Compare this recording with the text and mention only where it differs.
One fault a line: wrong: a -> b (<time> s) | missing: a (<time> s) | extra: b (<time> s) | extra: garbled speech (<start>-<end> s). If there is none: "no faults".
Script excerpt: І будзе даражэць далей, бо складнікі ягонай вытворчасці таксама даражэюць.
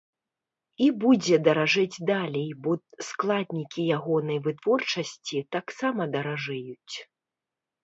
no faults